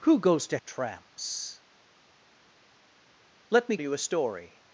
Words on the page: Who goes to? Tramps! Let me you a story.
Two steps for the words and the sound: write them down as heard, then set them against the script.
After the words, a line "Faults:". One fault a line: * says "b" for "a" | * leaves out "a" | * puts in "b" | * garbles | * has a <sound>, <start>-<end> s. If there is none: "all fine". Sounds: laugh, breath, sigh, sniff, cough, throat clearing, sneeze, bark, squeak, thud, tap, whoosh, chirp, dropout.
Who goes to? Tramps! Let me you a story.
Faults:
all fine